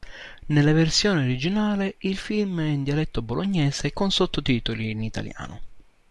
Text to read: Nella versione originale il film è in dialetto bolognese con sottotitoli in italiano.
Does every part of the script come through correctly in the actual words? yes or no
yes